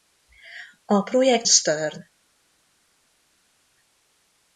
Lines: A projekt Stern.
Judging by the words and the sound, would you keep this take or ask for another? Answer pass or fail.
pass